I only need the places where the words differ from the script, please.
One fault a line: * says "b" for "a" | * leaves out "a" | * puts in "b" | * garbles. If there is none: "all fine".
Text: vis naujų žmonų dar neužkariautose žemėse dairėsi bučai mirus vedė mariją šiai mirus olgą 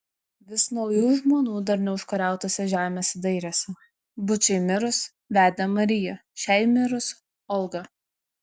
all fine